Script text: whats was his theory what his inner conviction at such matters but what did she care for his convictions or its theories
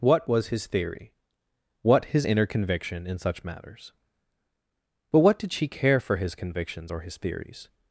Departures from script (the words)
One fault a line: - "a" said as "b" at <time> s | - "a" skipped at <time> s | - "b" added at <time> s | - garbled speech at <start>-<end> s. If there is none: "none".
- "whats" said as "what" at 0.0 s
- "at" said as "in" at 3.0 s
- "its" said as "his" at 7.0 s